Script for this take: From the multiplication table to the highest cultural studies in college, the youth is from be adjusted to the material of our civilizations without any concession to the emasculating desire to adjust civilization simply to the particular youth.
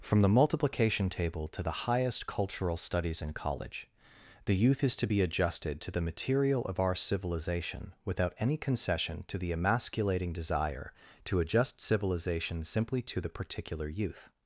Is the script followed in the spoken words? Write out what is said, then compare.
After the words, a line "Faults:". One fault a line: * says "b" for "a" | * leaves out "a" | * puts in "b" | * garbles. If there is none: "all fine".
From the multiplication table to the highest cultural studies in college, the youth is to be adjusted to the material of our civilization without any concession to the emasculating desire to adjust civilization simply to the particular youth.
Faults:
* says "to" for "from"
* says "civilization" for "civilizations"